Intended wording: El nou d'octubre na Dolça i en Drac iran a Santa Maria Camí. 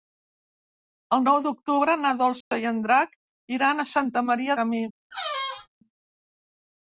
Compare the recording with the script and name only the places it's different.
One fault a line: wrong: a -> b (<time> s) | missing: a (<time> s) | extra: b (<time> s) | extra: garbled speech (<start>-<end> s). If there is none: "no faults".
no faults